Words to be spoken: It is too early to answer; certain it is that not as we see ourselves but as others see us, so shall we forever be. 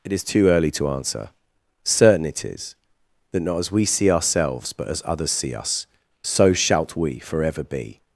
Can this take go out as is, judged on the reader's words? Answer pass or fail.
fail